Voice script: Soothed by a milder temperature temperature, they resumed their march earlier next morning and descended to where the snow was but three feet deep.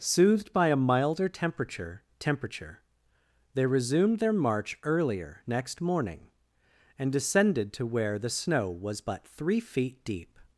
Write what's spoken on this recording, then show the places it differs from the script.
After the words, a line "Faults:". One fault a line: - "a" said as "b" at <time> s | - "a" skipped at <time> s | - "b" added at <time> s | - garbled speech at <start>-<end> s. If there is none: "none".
Soothed by a milder temperature temperature, they resumed their march earlier next morning and descended to where the snow was but three feet deep.
Faults:
none